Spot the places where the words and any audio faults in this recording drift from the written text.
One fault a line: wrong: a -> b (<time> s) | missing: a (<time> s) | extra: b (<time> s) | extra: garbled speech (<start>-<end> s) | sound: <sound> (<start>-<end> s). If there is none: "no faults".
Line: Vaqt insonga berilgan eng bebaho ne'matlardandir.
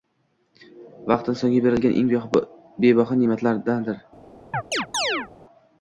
sound: chirp (4.5-5.3 s)